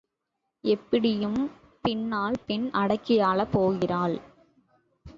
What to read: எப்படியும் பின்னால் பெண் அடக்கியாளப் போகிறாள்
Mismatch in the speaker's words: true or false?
false